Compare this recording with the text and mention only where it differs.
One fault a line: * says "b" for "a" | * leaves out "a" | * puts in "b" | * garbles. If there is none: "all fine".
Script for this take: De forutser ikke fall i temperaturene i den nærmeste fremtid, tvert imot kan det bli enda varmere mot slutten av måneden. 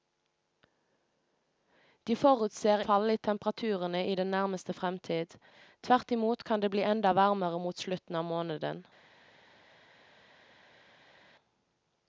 * leaves out "ikke"